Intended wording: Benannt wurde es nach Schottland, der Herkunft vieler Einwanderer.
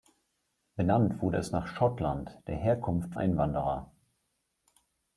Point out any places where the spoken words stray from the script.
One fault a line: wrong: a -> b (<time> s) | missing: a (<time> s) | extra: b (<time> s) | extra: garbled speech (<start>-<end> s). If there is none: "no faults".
missing: vieler (3.1 s)